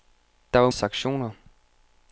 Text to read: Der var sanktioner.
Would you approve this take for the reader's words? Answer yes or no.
yes